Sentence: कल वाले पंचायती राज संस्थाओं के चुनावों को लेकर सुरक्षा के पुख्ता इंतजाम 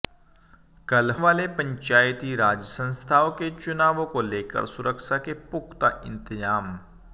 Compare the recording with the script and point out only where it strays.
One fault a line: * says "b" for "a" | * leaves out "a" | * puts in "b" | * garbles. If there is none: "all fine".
all fine